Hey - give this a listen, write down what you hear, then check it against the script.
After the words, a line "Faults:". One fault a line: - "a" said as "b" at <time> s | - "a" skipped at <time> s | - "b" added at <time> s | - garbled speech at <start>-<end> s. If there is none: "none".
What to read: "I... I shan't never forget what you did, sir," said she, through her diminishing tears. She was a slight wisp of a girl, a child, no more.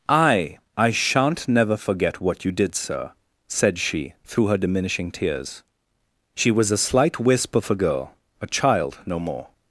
"I... I shan't never forget what you did, sir," said she, through her diminishing tears. She was a slight wisp of a girl, a child, no more.
Faults:
none